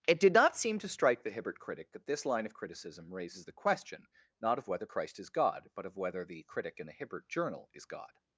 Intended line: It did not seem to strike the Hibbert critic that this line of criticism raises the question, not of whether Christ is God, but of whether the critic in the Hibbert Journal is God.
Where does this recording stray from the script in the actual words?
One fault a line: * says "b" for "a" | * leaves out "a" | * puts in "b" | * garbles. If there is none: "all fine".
all fine